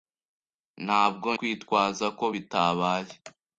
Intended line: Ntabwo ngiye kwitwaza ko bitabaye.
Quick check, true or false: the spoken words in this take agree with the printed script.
false